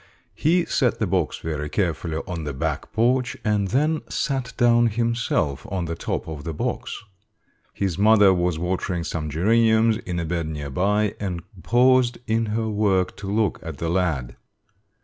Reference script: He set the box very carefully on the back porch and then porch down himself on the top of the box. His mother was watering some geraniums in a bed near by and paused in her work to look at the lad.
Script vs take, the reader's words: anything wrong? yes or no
yes